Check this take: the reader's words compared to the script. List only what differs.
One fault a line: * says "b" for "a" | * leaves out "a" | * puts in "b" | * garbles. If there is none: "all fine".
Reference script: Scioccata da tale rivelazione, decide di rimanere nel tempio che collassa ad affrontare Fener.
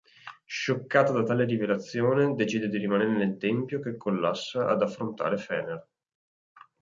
all fine